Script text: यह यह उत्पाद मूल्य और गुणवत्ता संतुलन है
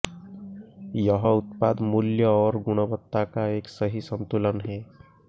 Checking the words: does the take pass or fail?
fail